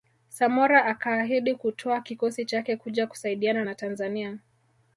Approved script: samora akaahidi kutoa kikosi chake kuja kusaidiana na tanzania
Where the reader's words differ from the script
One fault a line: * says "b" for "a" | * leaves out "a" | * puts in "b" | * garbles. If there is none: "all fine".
all fine